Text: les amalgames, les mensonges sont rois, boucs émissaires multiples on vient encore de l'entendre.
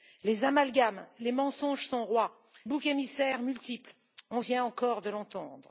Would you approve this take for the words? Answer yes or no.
yes